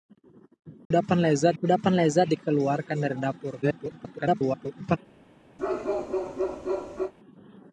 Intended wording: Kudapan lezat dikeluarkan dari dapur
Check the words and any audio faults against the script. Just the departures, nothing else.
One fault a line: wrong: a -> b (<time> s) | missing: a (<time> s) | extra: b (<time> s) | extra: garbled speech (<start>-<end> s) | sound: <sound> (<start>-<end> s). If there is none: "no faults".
sound: dropout (0.8-0.9 s)
extra: kudapan lezat (1.6 s)
extra: garbled speech (3.6-5.0 s)
sound: bark (5.6-7.1 s)